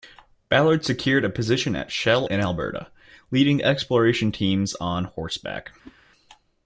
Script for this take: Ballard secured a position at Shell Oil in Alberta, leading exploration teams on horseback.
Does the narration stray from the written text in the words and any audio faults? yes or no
yes